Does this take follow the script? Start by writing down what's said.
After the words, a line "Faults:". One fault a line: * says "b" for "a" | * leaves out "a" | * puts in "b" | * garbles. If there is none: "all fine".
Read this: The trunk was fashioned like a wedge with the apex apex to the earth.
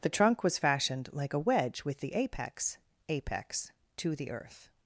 The trunk was fashioned like a wedge with the apex apex to the earth.
Faults:
all fine